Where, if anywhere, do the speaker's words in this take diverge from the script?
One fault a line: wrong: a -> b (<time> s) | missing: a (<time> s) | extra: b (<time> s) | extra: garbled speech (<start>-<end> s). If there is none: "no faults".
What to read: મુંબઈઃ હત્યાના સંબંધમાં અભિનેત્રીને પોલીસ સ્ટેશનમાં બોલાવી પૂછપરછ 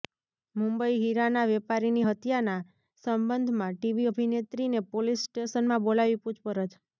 extra: હીરાના વેપારીની (1.0 s)
extra: ટીવી (3.8 s)